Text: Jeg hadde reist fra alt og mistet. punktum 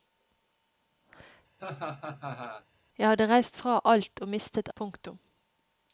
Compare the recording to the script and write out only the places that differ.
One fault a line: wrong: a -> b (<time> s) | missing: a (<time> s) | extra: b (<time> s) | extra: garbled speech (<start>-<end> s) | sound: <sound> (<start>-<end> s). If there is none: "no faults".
sound: laugh (1.6-2.7 s)